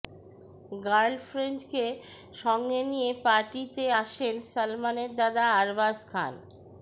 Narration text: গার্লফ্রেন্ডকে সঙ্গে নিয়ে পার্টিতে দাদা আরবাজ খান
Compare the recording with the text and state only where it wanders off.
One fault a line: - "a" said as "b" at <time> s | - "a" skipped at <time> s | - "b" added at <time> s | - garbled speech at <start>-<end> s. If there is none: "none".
- "আসেন সলমনের" added at 4.0 s